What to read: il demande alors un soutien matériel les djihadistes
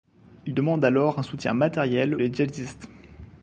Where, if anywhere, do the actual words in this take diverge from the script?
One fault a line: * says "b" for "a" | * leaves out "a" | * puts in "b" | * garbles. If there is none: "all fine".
all fine